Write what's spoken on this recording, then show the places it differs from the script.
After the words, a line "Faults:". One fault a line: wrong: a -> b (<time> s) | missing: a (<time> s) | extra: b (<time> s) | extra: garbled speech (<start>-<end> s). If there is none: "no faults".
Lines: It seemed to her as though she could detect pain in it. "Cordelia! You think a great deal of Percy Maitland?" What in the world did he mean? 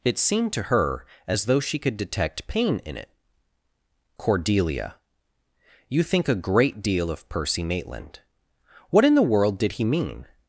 It seemed to her as though she could detect pain in it. "Cordelia! You think a great deal of Percy Maitland?" What in the world did he mean?
Faults:
no faults